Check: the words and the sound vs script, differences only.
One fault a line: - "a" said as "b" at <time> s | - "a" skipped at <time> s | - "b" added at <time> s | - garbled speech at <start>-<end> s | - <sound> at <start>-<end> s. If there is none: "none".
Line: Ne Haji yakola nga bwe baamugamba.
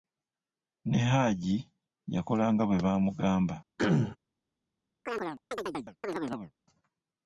- throat clearing at 3.8-4.2 s
- chirp at 5.1-6.5 s